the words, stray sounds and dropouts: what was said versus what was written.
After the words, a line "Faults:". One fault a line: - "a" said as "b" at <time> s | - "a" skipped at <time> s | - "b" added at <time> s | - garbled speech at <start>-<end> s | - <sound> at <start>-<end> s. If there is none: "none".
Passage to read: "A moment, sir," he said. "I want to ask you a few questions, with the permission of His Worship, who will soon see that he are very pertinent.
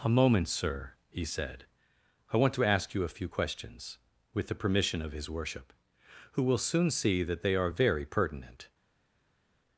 "A moment, sir," he said. "I want to ask you a few questions, with the permission of His Worship, who will soon see that they are very pertinent.
Faults:
- "he" said as "they" at 7.4 s